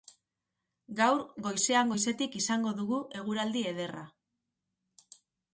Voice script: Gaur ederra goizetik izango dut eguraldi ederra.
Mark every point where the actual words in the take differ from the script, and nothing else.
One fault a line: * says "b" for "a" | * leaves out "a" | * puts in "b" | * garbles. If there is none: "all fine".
* says "goizean" for "ederra"
* says "dugu" for "dut"